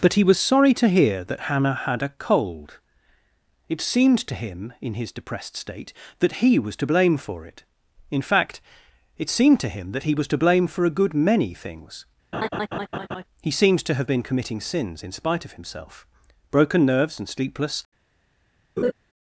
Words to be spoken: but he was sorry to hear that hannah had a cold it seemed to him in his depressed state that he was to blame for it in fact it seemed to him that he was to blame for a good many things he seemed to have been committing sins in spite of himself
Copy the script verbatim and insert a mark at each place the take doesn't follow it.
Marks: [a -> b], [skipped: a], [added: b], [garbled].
but he was sorry to hear that hannah had a cold it seemed to him in his depressed state that he was to blame for it in fact it seemed to him that he was to blame for a good many things he seemed to have been committing sins in spite of himself [added: broken nerves and sleepless]